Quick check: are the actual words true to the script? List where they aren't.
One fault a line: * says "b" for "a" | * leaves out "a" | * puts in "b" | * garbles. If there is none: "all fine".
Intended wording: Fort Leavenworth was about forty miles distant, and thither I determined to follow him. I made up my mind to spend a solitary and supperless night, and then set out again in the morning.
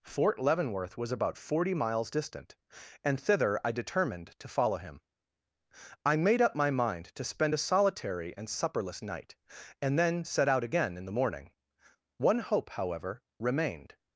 * puts in "One hope however remained"